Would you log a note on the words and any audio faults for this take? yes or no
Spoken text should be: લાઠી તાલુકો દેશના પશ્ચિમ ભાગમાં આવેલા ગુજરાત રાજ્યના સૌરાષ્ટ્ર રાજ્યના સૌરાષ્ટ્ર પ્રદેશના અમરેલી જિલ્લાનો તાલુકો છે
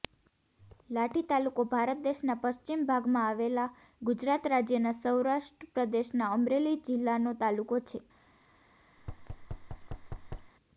yes